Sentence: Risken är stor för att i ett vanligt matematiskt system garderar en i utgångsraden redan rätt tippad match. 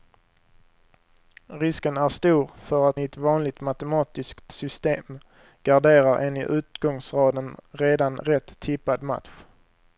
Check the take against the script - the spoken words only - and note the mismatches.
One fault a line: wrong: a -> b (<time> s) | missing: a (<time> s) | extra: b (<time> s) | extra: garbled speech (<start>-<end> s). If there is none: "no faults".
no faults